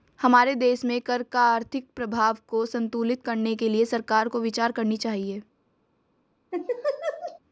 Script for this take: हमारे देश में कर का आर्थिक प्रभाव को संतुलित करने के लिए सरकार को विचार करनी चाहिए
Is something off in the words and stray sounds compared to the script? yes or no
yes